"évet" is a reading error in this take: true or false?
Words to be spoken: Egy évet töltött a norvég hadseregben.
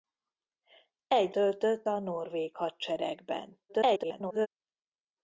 true